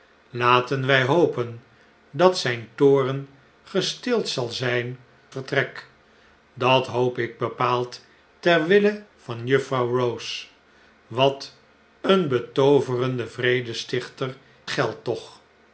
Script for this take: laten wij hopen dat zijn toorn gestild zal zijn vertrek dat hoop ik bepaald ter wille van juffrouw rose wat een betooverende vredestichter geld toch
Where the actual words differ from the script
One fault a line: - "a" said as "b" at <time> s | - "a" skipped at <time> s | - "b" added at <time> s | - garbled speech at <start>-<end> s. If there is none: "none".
none